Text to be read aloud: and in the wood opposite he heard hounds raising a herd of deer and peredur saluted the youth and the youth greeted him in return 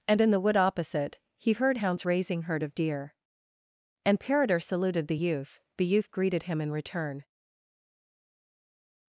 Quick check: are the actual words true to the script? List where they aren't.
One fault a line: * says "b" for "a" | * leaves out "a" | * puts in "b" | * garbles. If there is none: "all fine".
* leaves out "a"
* leaves out "and"